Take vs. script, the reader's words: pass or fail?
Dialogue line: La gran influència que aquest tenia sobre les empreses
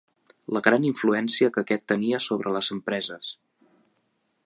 pass